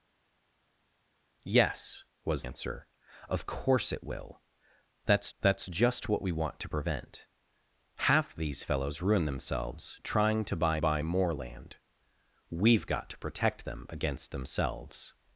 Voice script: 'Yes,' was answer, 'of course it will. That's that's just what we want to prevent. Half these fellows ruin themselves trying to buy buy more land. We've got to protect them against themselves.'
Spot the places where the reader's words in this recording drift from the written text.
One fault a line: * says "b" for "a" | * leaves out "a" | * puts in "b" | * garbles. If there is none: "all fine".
all fine